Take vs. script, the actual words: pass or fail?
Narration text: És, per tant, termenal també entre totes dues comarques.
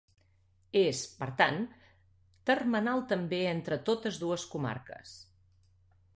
pass